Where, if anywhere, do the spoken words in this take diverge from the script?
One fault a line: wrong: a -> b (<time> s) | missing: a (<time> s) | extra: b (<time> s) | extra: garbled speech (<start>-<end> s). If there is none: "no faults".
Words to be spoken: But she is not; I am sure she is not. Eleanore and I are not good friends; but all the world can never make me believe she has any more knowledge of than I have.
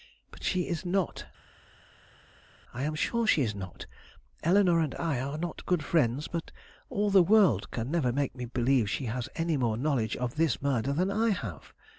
extra: this murder (10.4 s)